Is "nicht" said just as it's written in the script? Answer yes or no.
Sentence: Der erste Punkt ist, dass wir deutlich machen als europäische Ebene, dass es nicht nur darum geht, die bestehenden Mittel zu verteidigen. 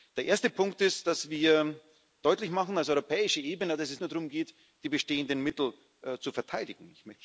no